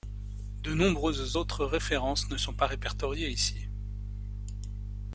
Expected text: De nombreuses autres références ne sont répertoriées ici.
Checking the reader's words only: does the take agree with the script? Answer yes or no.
no